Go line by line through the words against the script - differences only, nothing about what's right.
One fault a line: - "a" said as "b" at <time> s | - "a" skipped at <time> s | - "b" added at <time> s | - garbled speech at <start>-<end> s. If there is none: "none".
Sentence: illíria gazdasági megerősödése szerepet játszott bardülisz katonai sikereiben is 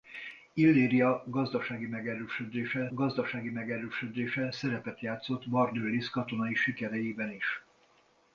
- "gazdasági megerősödése" added at 2.9 s